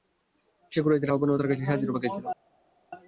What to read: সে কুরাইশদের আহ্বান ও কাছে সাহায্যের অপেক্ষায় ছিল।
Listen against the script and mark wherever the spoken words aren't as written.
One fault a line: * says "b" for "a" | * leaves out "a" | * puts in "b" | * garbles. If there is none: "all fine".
* puts in "তার"